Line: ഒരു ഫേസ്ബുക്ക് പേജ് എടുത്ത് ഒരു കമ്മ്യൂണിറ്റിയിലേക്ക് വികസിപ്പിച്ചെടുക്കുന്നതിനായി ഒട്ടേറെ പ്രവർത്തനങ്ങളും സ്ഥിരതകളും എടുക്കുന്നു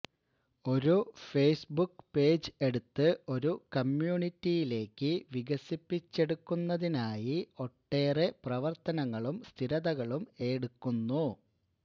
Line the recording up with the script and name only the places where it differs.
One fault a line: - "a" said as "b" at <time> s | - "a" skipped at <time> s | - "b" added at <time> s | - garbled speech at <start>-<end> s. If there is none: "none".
none